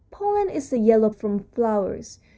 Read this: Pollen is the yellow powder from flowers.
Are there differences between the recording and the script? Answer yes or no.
yes